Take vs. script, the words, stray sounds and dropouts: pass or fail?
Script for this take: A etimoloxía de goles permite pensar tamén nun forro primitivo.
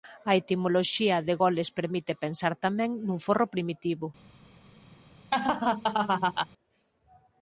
fail